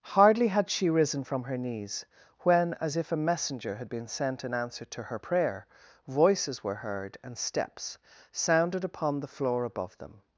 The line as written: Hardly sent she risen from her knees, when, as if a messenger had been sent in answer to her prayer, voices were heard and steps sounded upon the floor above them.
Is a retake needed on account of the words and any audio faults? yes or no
yes